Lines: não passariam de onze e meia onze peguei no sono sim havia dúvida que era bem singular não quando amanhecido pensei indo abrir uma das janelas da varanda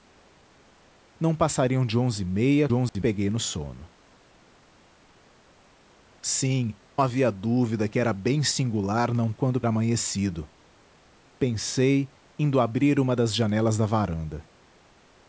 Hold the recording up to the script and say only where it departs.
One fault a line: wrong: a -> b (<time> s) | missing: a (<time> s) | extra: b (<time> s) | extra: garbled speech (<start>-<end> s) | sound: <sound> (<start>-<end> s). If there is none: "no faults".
sound: dropout (2.9-2.9 s)